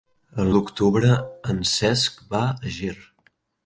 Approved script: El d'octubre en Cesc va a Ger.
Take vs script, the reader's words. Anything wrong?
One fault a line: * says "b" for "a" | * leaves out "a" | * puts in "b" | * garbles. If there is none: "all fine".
all fine